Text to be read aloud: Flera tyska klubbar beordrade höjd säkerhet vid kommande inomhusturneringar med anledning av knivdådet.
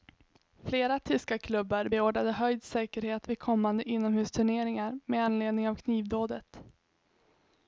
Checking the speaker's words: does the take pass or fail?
pass